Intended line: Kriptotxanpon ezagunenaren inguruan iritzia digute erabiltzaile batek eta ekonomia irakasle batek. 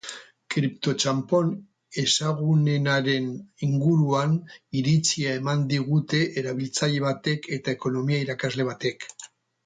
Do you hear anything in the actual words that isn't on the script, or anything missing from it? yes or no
yes